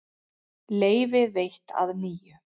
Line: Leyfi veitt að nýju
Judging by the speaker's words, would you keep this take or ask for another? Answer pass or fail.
pass